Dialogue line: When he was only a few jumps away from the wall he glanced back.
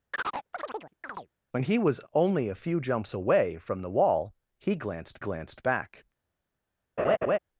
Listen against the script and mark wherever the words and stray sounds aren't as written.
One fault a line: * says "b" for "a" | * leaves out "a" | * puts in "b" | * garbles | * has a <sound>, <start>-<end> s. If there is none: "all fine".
* has a chirp, 0.1-1.3 s
* puts in "glanced"
* has a laugh, 7.0-7.4 s